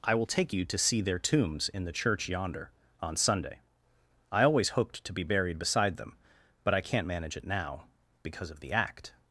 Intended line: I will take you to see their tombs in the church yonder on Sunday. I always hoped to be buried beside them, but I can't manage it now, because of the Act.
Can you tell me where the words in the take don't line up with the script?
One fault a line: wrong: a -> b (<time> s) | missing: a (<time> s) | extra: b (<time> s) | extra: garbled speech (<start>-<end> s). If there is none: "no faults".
no faults